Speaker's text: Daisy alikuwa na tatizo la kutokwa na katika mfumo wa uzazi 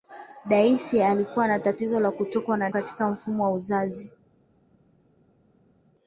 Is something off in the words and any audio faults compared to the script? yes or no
no